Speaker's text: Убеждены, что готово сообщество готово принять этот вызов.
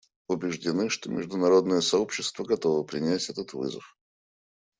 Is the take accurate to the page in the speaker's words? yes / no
no